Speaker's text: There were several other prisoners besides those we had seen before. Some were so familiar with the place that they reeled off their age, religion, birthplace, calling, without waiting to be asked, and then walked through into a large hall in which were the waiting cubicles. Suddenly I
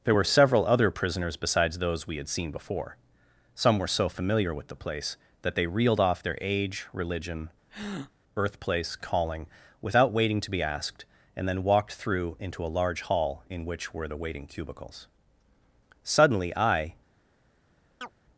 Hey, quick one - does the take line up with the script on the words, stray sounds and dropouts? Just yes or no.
no